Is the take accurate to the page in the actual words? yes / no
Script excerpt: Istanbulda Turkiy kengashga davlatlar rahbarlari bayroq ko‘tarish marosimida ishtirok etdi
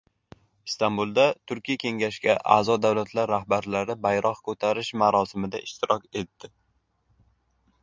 no